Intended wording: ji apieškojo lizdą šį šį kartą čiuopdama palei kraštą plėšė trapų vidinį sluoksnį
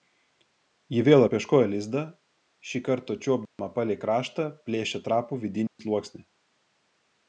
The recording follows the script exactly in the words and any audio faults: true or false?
false